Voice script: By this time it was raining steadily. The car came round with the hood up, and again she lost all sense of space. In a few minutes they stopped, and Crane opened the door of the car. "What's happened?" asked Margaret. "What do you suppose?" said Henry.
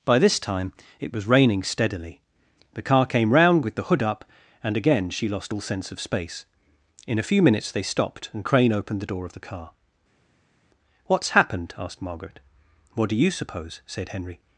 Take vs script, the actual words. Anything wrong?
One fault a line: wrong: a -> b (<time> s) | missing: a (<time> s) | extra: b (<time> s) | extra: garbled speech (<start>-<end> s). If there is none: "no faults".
no faults